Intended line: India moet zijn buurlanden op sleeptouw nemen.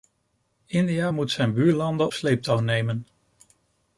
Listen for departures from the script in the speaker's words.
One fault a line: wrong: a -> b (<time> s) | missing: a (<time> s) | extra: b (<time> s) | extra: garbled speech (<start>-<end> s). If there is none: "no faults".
missing: op (2.1 s)